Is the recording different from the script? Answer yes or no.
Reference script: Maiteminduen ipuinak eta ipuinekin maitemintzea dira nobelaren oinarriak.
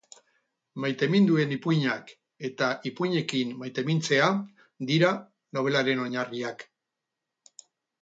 no